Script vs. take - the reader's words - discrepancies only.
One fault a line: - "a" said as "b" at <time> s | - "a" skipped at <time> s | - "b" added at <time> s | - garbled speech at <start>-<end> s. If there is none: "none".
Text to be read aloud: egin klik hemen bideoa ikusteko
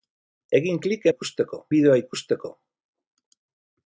- "hemen" said as "ikusteko" at 1.1 s